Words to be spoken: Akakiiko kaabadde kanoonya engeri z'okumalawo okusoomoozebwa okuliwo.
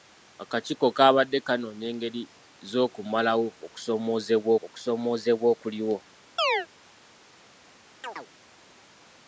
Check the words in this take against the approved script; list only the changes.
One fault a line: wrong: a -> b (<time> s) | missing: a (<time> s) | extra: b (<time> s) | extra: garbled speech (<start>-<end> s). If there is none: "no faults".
extra: okusoomoozebwa (4.6 s)